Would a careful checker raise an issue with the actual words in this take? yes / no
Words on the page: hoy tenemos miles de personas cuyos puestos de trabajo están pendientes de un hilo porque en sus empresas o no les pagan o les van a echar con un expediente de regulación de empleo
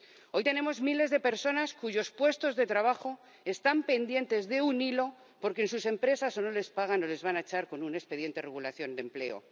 no